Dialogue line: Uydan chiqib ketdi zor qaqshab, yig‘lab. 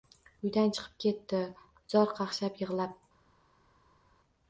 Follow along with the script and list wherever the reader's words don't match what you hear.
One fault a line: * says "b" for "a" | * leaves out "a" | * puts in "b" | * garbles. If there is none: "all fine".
all fine